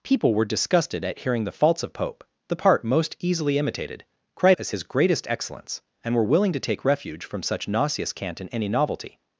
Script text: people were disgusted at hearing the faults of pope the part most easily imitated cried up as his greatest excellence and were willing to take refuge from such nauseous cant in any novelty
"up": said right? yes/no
no